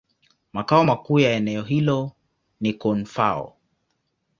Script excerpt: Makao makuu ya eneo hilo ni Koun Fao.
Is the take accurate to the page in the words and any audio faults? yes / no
yes